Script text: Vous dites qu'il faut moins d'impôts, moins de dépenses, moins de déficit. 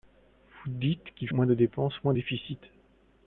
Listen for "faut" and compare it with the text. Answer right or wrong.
wrong